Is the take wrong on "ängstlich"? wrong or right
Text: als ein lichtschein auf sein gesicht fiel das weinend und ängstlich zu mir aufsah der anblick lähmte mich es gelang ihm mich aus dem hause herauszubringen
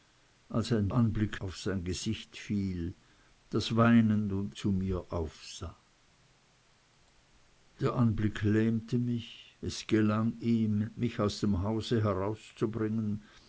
wrong